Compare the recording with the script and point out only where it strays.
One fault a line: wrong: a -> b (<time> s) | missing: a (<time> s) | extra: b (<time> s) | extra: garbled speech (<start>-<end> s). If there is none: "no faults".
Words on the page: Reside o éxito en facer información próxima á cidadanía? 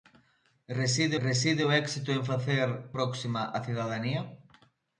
extra: reside (1.3 s)
missing: información (2.7 s)